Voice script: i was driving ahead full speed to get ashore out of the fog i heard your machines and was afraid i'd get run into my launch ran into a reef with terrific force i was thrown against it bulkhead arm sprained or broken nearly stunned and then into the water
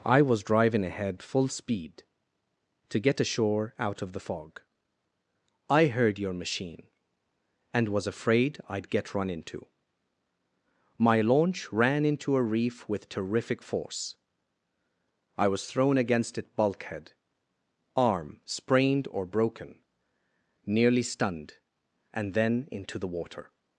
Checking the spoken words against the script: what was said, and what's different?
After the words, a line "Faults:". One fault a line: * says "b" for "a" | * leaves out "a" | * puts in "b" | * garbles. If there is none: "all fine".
i was driving ahead full speed to get ashore out of the fog i heard your machine and was afraid i'd get run into my launch ran into a reef with terrific force i was thrown against it bulkhead arm sprained or broken nearly stunned and then into the water
Faults:
* says "machine" for "machines"